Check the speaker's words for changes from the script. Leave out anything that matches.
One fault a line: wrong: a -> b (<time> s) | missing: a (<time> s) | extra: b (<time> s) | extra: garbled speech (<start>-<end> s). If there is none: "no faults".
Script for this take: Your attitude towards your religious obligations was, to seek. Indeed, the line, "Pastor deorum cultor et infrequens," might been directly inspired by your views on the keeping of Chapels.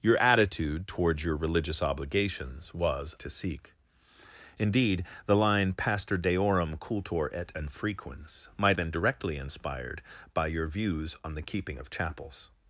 no faults